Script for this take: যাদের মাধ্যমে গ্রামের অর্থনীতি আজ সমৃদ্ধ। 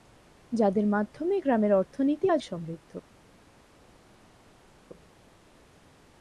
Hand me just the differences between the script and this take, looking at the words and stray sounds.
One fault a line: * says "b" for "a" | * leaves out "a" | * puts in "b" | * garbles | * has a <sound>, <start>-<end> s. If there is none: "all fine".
all fine